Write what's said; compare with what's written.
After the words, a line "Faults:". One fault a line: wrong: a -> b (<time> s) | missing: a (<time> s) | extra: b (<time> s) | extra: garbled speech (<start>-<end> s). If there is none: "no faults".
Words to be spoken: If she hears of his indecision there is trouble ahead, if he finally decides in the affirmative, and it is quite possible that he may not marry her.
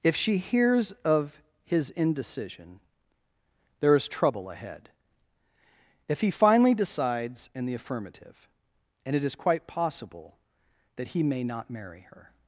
If she hears of his indecision there is trouble ahead, if he finally decides in the affirmative, and it is quite possible that he may not marry her.
Faults:
no faults